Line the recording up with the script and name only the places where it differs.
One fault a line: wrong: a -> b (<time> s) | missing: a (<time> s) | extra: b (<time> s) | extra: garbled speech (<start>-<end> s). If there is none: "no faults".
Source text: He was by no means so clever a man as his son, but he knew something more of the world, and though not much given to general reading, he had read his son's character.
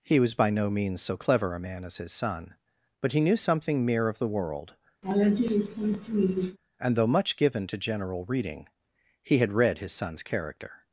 wrong: more -> mere (3.9 s)
missing: not (7.1 s)